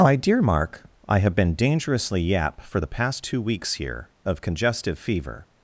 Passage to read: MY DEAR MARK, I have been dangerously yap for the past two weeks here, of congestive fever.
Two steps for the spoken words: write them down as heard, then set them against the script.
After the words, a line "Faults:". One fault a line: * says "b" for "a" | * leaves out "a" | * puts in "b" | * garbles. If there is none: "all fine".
MY DEAR MARK, I have been dangerously yap for the past two weeks here, of congestive fever.
Faults:
all fine